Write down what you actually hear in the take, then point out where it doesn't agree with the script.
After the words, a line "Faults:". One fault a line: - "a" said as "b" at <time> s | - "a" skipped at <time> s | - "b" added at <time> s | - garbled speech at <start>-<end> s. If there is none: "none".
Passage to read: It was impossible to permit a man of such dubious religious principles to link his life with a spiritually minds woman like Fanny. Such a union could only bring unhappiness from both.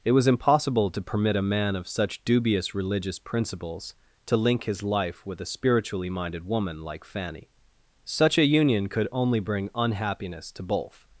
It was impossible to permit a man of such dubious religious principles to link his life with a spiritually minded woman like Fanny. Such a union could only bring unhappiness to both.
Faults:
- "minds" said as "minded" at 6.1 s
- "from" said as "to" at 10.5 s